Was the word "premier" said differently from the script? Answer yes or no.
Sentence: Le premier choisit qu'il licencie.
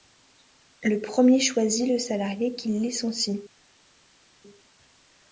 no